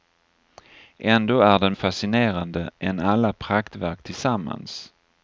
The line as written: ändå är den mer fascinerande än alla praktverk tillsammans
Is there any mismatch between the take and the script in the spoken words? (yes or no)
yes